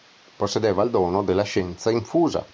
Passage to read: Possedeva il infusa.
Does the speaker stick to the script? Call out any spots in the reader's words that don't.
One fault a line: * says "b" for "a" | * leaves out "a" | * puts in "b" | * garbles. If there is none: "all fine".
* puts in "dono della scienza"